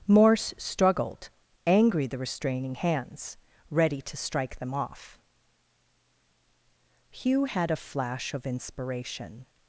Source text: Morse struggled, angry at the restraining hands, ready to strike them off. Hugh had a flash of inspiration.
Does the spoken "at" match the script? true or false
false